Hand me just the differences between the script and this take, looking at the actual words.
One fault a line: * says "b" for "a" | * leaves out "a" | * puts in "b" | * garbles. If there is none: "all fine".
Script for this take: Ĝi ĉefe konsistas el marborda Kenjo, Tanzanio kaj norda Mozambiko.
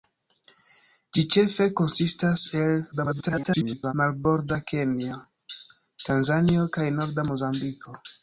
* garbles